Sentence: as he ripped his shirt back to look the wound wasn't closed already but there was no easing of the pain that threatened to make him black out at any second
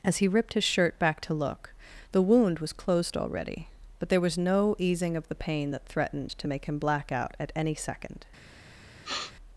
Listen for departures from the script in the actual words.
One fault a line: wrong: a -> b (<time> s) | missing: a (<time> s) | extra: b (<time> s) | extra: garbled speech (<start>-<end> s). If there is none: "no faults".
wrong: wasn't -> was (2.6 s)